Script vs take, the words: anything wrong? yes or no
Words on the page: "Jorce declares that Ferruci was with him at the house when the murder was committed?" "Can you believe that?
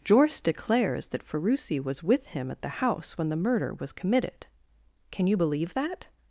no